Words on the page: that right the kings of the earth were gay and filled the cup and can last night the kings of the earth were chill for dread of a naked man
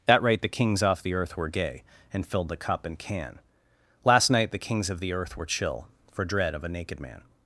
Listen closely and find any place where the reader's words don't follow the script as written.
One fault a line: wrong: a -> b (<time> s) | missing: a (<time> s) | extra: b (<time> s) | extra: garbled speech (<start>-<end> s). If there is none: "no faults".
wrong: of -> off (0.8 s)